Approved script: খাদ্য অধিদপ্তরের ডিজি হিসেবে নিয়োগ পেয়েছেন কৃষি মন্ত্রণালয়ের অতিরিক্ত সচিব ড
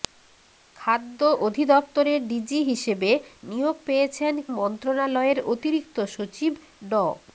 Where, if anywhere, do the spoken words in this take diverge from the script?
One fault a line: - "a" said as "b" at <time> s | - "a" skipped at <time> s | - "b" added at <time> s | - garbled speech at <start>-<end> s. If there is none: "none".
- "কৃষি" skipped at 4.3 s